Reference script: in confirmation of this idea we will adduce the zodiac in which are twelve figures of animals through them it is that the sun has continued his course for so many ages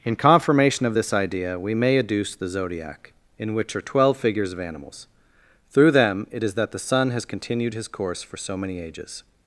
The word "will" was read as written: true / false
false